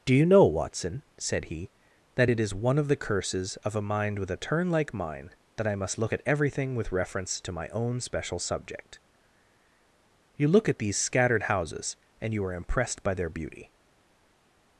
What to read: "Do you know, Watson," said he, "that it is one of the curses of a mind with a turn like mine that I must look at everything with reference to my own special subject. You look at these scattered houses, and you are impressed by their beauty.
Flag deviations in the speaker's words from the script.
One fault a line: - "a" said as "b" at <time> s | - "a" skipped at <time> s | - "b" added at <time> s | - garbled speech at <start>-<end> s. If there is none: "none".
none